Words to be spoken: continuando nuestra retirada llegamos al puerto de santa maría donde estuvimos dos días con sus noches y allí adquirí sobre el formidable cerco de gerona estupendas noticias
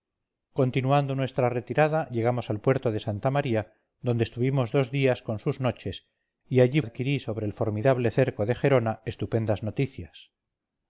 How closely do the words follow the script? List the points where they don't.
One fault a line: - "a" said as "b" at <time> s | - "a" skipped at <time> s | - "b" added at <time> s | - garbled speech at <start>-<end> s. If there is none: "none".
none